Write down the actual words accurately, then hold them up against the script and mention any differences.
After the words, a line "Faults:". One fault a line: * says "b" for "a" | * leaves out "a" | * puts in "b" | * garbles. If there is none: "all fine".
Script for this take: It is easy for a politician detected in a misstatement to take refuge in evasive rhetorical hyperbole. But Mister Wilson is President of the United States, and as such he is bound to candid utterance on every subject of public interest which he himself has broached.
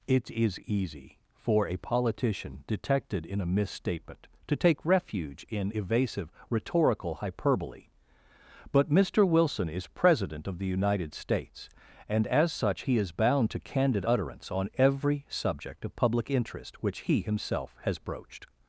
It is easy for a politician detected in a misstatement to take refuge in evasive rhetorical hyperbole. But Mister Wilson is President of the United States, and as such he is bound to candid utterance on every subject of public interest which he himself has broached.
Faults:
all fine